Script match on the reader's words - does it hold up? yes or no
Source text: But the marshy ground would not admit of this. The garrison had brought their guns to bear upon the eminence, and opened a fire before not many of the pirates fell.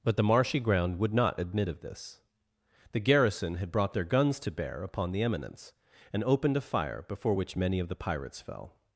no